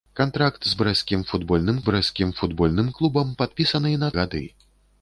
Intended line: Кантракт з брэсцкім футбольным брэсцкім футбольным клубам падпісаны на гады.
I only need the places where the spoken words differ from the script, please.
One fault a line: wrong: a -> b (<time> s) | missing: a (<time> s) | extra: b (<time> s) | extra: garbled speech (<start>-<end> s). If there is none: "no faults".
no faults